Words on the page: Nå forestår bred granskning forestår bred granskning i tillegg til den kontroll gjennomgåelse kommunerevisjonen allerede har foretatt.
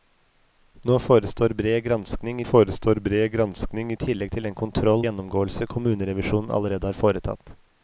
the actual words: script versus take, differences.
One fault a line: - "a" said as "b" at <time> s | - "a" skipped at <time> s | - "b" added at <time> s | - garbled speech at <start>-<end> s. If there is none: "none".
none